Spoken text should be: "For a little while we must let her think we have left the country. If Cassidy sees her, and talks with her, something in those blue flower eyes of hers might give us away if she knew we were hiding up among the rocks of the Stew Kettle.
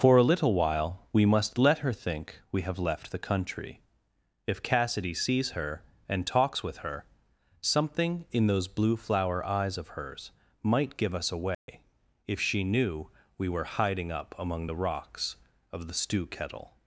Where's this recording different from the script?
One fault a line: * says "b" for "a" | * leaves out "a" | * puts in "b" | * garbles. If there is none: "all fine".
all fine